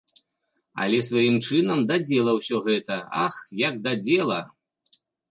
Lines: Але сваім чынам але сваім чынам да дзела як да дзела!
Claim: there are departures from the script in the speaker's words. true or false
true